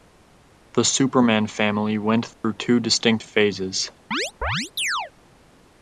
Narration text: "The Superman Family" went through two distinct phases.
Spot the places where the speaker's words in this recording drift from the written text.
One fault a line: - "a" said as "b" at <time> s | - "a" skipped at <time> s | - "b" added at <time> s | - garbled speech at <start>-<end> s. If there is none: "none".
none